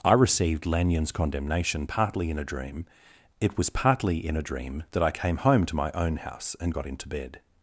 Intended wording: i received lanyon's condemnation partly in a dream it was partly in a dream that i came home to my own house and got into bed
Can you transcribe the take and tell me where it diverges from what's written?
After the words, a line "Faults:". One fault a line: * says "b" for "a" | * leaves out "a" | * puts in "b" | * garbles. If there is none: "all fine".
i received lanyon's condemnation partly in a dream it was partly in a dream that i came home to my own house and got into bed
Faults:
all fine